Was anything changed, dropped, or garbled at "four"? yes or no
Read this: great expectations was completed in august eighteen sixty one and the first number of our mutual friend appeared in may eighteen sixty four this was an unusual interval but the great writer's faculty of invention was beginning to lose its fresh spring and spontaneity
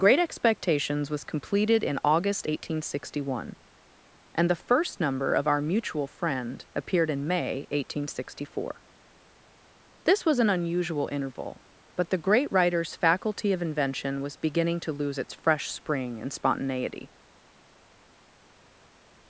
no